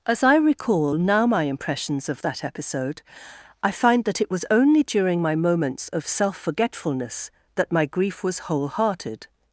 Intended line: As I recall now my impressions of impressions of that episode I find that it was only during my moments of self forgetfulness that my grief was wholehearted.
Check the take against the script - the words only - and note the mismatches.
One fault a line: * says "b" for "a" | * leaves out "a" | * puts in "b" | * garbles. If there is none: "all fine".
* leaves out "impressions of"